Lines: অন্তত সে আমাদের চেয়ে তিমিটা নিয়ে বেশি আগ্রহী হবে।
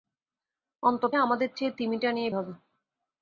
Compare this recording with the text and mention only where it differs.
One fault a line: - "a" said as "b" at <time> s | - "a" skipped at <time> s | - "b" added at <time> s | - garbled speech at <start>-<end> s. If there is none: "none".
- "সে" skipped at 1.1 s
- "বেশি আগ্রহী" skipped at 2.3 s